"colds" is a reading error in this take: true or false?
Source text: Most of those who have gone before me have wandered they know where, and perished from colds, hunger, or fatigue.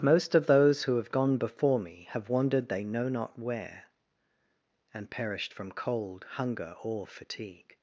true